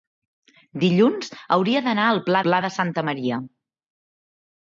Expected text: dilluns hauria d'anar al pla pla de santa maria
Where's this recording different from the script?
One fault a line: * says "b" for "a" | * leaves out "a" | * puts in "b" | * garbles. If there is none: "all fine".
all fine